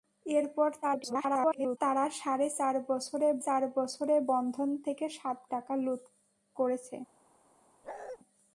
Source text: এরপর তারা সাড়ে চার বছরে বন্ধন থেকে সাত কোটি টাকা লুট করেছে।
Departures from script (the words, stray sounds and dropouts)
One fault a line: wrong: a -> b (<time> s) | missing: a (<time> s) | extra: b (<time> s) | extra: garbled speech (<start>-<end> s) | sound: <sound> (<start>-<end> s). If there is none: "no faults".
extra: garbled speech (0.8-1.8 s)
extra: চার বছরে (3.4 s)
missing: কোটি (5.4 s)
sound: bark (7.8-8.2 s)